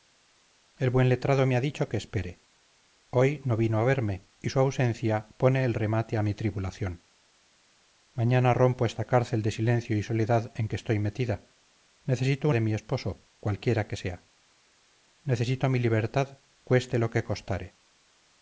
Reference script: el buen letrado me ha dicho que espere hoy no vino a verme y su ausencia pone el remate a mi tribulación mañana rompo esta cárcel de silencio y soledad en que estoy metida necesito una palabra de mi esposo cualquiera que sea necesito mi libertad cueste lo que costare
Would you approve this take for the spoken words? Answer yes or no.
no